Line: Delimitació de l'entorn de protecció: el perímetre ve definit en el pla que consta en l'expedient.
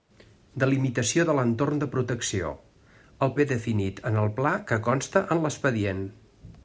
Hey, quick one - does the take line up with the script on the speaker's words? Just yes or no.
no